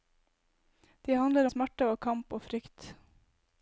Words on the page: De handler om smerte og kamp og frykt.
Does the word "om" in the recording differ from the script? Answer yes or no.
yes